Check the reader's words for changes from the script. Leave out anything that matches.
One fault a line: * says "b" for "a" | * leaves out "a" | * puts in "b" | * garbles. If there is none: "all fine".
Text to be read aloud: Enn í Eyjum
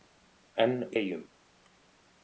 all fine